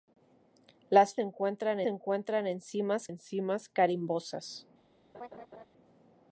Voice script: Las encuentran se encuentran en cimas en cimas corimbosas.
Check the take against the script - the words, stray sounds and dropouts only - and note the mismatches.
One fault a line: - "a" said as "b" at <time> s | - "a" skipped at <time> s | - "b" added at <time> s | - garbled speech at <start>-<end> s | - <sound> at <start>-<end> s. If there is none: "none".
- laugh at 5.1-5.7 s